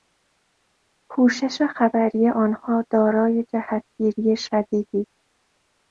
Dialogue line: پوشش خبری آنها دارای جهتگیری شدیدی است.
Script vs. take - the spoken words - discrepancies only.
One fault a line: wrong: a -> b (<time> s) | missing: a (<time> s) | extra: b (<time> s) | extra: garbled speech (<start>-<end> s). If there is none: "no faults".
no faults